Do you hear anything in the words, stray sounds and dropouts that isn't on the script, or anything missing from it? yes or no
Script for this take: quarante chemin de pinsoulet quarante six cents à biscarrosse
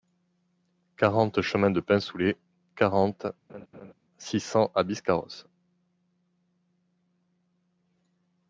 yes